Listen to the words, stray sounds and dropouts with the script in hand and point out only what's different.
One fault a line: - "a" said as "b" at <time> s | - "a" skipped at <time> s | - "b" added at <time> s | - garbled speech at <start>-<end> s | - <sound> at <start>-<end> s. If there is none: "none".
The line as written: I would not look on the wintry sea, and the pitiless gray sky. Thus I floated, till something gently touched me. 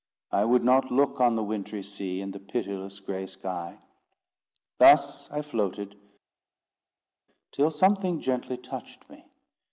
none